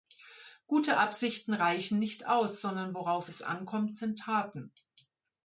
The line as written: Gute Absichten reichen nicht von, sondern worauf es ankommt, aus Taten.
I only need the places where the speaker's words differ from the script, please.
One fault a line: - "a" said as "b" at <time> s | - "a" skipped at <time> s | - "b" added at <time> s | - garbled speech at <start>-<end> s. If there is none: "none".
- "von" said as "aus" at 2.3 s
- "aus" said as "sind" at 4.0 s